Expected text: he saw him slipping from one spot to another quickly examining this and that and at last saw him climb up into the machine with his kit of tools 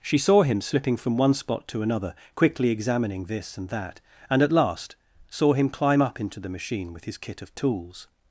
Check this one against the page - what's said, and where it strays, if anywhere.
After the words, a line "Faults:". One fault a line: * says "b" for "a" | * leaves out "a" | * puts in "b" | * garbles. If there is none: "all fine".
she saw him slipping from one spot to another quickly examining this and that and at last saw him climb up into the machine with his kit of tools
Faults:
* says "she" for "he"